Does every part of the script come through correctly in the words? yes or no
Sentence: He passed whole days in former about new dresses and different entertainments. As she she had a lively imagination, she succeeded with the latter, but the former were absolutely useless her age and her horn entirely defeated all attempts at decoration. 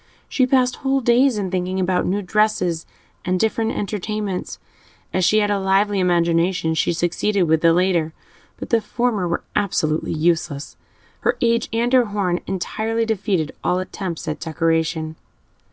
no